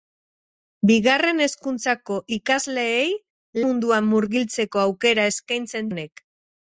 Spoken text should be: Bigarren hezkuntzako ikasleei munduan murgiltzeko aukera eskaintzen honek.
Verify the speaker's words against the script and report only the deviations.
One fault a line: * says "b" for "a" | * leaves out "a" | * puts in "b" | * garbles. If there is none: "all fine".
all fine